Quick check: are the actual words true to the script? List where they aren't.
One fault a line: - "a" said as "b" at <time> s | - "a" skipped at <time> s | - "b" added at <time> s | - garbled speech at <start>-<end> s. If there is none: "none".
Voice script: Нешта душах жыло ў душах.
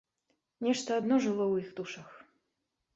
- "душах" said as "адно" at 1.0 s
- "іх" added at 1.7 s